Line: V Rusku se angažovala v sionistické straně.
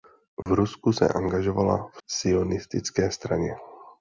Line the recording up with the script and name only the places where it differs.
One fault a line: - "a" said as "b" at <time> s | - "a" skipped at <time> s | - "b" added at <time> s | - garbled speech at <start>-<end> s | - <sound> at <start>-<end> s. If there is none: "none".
- dropout at 0.4-0.5 s